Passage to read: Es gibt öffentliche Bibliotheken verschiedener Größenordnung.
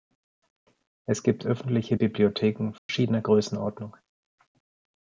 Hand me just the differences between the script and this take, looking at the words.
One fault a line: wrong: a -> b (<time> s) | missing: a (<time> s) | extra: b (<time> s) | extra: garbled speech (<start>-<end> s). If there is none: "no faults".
no faults